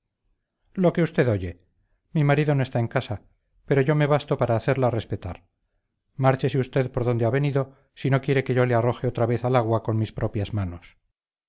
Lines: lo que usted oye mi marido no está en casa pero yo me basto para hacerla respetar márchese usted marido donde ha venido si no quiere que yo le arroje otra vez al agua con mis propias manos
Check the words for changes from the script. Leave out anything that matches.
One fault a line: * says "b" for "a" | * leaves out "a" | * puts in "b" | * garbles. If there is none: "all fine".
* says "por" for "marido"